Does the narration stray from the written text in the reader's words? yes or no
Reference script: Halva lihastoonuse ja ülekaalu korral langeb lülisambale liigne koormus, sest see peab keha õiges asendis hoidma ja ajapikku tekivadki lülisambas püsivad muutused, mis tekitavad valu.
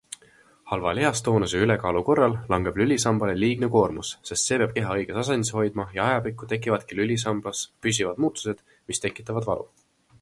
no